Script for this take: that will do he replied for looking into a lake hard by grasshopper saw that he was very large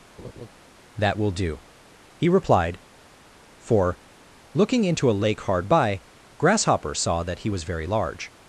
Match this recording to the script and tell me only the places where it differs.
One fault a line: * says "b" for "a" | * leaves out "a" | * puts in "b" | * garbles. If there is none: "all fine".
all fine